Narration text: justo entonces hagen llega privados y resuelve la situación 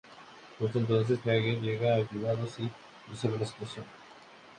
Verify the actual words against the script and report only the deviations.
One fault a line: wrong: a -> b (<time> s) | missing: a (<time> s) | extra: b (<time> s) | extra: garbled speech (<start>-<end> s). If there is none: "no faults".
no faults